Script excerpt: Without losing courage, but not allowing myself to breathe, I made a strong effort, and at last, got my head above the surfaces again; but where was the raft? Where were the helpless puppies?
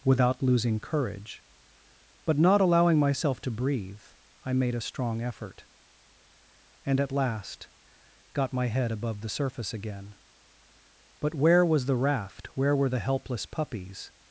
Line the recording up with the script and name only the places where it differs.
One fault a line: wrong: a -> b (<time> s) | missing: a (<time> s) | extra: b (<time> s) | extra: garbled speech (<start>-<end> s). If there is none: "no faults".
wrong: surfaces -> surface (9.3 s)